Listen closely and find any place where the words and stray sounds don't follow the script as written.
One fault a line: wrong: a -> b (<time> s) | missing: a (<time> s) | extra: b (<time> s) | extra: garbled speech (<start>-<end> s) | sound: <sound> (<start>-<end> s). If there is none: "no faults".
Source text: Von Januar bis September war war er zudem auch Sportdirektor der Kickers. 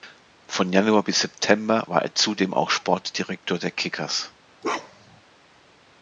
missing: war (2.0 s)
sound: bark (4.6-5.2 s)